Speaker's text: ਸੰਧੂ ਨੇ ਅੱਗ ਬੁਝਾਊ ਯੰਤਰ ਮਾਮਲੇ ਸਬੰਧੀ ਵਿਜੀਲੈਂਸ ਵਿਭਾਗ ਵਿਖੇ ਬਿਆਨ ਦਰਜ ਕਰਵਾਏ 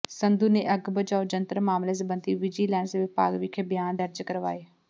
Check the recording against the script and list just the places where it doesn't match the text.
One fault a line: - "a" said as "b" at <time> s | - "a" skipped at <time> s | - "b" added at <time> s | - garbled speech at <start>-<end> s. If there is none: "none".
none